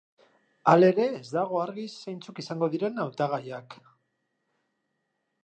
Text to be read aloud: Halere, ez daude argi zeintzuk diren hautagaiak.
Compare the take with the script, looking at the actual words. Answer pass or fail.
fail